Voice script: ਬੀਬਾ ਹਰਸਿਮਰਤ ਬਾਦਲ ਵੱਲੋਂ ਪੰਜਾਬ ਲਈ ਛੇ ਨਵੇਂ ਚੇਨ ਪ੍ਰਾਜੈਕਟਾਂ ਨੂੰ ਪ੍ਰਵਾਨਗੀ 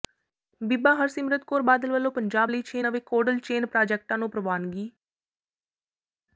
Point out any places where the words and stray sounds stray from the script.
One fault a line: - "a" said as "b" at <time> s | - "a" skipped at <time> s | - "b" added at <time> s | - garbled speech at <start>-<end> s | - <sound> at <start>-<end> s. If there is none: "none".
- "ਕੌਰ" added at 1.5 s
- "ਕੋਲਡ" added at 3.1 s